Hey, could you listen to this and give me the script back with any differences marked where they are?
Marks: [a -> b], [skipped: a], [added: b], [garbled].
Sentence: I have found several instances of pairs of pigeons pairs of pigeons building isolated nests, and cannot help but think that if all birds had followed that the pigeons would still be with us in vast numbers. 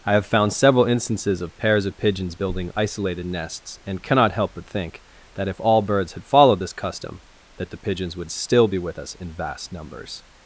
I have found several instances of pairs of pigeons [skipped: pairs of pigeons] building isolated nests, and cannot help but think that if all birds had followed [added: this custom] that the pigeons would still be with us in vast numbers.